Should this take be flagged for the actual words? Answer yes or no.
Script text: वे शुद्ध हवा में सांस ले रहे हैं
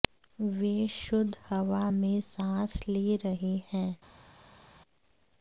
no